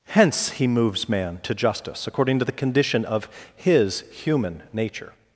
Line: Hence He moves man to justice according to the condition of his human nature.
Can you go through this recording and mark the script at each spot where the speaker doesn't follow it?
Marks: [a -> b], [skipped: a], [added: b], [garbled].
Hence He moves man to justice according to the condition of his human nature.